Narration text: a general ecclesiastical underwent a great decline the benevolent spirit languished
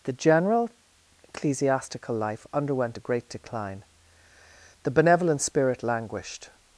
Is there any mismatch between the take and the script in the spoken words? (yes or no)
yes